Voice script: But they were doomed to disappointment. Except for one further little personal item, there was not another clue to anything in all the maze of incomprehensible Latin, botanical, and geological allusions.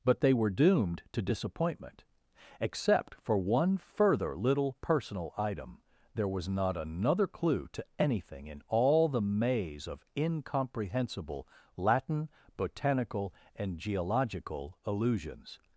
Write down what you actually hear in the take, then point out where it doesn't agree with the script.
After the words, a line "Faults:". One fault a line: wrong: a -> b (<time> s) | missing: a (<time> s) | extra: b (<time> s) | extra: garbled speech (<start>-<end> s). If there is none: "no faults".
But they were doomed to disappointment. Except for one further little personal item, there was not another clue to anything in all the maze of incomprehensible Latin, botanical, and geological allusions.
Faults:
no faults